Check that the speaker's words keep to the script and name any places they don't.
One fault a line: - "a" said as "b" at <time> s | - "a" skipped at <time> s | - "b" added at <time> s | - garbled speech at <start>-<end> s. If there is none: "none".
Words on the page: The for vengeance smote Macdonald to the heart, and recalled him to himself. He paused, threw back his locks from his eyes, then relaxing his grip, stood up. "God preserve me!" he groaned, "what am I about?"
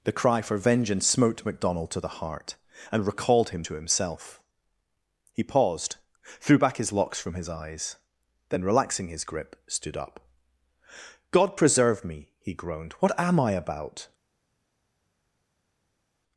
- "cry" added at 0.1 s